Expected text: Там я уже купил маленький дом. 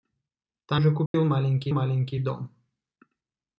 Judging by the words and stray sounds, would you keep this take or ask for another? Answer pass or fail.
fail